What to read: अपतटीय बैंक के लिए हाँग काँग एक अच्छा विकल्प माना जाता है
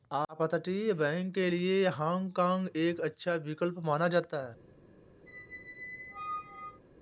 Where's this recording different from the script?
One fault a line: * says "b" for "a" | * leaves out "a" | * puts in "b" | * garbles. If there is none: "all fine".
all fine